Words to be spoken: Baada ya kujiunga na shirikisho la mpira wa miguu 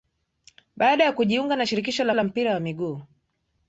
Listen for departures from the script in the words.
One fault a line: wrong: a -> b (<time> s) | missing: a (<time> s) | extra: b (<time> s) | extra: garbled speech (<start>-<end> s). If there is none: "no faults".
extra: la (2.1 s)